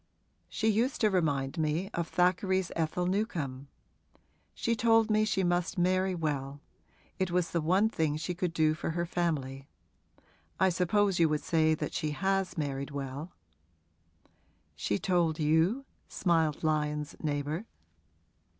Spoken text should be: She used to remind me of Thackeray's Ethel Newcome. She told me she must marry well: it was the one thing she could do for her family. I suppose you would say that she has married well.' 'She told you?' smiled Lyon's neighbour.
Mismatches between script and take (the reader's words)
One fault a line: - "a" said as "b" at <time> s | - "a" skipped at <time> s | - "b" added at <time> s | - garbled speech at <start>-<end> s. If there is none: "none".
none